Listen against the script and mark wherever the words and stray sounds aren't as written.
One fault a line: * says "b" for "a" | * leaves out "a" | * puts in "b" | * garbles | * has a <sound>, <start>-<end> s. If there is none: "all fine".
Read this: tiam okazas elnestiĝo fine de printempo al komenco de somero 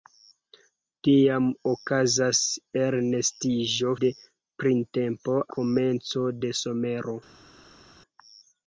* leaves out "fine"
* leaves out "al"